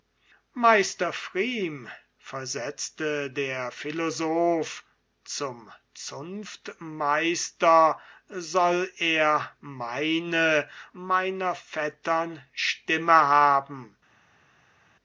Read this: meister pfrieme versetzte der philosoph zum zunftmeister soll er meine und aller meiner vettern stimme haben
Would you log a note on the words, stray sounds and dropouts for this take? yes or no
yes